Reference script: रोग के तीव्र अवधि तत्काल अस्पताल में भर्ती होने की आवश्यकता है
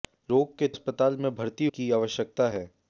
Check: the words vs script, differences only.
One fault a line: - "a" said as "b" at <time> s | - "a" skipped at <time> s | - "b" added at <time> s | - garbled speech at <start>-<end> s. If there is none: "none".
- "तीव्र अवधि तत्काल" skipped at 0.7 s
- "होने" skipped at 1.6 s